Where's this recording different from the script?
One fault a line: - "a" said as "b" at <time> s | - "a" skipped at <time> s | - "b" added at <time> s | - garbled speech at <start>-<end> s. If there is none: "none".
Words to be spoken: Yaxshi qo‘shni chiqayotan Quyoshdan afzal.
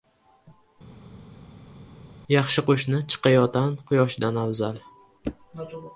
none